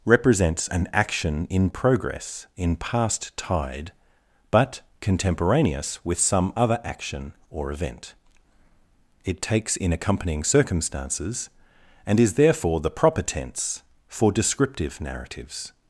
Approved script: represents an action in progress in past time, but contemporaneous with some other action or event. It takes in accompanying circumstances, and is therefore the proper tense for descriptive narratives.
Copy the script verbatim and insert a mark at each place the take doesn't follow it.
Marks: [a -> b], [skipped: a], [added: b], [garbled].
represents an action in progress in past [time, -> tide] but contemporaneous with some other action or event. It takes in accompanying circumstances, and is therefore the proper tense for descriptive narratives.